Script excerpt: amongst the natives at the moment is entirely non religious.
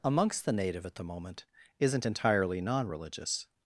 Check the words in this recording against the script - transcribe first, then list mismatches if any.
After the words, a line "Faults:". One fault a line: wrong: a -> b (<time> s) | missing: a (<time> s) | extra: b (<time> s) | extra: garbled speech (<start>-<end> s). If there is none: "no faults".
amongst the native at the moment isn't entirely non religious.
Faults:
wrong: natives -> native (0.5 s)
wrong: is -> isn't (1.8 s)